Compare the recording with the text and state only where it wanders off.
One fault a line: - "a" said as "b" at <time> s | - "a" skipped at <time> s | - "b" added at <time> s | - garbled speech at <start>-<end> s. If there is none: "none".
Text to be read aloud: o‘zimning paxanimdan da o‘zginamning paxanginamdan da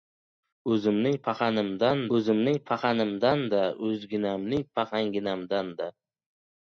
- "o‘zimning paxanimdan" added at 2.2 s